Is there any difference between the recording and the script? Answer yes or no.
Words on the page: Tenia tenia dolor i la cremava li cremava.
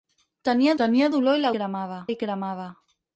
no